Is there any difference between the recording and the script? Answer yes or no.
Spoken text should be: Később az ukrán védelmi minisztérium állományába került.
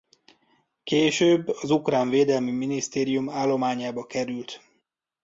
no